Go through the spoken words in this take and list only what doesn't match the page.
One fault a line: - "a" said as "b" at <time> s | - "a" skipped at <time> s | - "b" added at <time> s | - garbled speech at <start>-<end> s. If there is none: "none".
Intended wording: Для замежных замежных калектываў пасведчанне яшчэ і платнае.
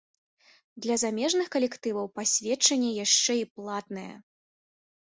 - "замежных" skipped at 1.5 s